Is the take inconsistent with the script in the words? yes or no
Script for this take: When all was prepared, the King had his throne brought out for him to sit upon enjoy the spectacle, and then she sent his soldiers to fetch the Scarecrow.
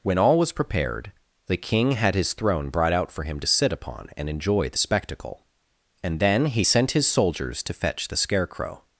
yes